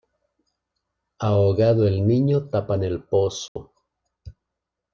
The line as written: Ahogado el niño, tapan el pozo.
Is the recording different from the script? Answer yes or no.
no